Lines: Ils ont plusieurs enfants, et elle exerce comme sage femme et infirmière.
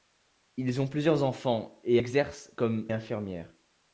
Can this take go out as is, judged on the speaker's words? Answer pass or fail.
fail